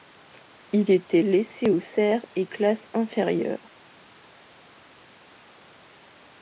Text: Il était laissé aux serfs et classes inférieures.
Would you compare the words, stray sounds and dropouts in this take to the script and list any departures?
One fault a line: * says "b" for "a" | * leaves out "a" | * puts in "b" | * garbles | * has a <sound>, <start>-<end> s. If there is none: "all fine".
all fine